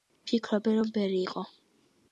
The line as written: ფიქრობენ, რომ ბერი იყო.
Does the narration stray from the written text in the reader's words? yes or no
no